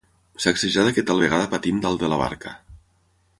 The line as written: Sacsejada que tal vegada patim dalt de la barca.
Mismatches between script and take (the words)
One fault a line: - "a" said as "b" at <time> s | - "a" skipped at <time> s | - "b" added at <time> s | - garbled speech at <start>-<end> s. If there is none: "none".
none